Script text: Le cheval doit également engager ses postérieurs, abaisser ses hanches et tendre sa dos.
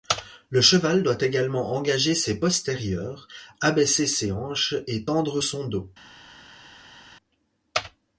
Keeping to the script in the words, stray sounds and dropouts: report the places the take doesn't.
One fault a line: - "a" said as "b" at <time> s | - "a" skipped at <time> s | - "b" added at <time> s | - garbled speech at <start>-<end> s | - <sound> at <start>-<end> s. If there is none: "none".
- "sa" said as "son" at 5.4 s